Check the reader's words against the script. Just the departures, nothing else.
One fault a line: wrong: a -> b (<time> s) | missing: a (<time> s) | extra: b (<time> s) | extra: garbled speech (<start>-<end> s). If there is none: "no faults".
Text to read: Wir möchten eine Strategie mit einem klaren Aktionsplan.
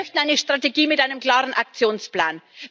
no faults